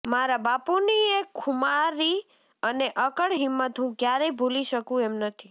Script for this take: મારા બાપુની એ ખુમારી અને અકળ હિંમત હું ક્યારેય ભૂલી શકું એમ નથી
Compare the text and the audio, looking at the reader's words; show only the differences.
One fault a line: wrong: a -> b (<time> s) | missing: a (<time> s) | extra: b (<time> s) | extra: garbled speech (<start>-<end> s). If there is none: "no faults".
no faults